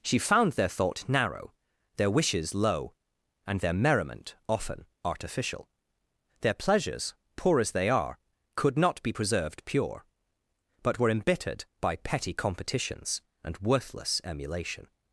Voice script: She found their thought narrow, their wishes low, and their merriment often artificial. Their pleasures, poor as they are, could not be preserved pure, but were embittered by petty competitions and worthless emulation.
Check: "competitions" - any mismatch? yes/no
no